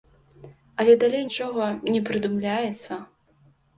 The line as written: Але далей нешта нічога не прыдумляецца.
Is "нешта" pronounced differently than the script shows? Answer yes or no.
yes